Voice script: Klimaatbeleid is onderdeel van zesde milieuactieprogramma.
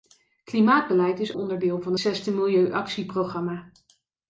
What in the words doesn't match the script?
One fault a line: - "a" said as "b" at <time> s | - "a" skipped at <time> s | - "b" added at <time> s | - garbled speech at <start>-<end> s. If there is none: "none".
none